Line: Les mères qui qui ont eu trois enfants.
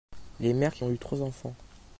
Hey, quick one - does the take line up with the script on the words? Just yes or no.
no